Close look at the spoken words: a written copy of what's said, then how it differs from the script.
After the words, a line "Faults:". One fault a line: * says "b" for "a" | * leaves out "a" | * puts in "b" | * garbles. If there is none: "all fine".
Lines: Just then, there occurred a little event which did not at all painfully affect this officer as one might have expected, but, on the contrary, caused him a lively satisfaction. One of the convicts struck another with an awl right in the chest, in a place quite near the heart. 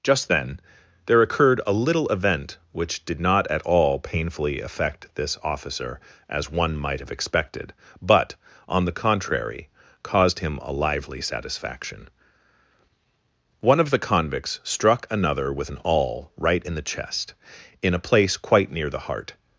Just then, there occurred a little event which did not at all painfully affect this officer as one might have expected, but, on the contrary, caused him a lively satisfaction. One of the convicts struck another with an awl right in the chest, in a place quite near the heart.
Faults:
all fine